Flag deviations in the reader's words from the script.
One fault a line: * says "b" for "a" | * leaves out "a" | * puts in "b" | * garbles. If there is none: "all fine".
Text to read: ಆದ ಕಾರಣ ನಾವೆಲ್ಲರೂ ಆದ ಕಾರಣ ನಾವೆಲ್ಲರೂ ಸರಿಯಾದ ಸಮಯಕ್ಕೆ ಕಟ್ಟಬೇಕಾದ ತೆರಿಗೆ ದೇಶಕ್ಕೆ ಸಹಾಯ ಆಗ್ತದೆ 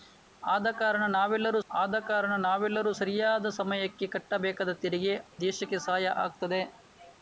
all fine